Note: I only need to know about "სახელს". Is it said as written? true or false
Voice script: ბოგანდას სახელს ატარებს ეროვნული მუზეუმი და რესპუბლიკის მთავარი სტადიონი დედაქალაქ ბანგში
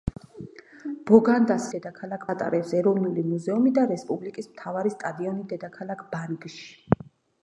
false